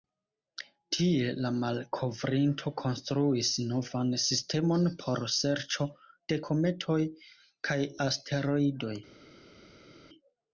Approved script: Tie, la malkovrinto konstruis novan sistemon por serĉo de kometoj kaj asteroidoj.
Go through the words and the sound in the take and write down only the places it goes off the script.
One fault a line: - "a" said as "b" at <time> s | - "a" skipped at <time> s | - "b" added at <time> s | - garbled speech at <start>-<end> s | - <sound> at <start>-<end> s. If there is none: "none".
none